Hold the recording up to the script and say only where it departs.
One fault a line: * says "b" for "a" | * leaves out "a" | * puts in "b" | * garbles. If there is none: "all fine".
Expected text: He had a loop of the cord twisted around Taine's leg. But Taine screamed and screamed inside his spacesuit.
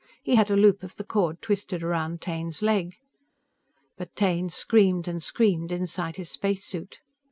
all fine